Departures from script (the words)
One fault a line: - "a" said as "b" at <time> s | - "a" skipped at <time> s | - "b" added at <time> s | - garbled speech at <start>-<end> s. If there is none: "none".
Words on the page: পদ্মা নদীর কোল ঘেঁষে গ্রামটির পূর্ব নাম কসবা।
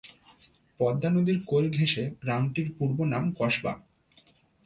none